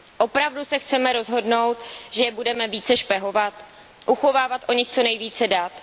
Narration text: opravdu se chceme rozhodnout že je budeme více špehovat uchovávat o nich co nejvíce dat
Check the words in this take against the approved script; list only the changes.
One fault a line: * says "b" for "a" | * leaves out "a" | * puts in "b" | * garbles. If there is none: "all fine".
all fine